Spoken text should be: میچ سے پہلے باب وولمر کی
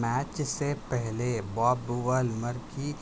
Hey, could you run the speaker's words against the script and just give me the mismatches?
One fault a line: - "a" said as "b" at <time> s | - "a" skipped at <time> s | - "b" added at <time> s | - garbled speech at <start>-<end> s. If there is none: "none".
none